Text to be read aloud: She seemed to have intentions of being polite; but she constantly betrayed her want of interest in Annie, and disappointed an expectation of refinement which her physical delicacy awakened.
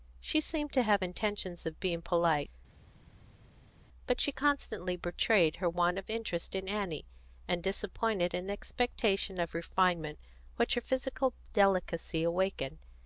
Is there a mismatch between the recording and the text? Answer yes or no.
no